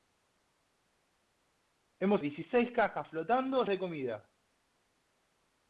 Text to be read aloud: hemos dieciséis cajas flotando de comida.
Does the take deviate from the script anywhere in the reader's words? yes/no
no